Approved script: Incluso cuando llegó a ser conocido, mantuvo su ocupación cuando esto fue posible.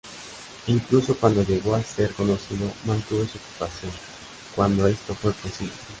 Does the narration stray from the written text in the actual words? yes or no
no